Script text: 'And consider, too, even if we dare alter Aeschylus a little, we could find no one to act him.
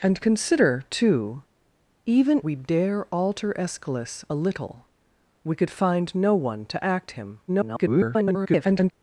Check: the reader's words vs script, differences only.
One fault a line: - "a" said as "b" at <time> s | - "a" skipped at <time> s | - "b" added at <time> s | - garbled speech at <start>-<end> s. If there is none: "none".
- "if" skipped at 2.4 s
- garbled speech at 7.5-8.9 s